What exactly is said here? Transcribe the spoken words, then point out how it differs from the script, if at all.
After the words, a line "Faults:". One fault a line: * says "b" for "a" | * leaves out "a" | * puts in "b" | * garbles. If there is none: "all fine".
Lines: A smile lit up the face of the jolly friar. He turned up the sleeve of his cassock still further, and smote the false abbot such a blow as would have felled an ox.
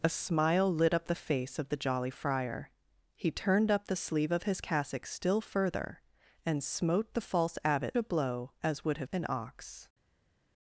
A smile lit up the face of the jolly friar. He turned up the sleeve of his cassock still further, and smote the false abbot a blow as would have an ox.
Faults:
* leaves out "such"
* leaves out "felled"